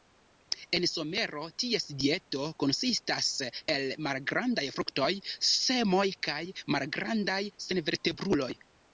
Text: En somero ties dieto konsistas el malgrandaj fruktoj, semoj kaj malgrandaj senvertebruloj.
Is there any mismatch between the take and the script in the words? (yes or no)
no